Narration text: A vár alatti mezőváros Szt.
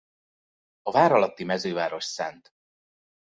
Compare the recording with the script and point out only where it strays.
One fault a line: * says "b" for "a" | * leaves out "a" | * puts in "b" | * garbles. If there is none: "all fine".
all fine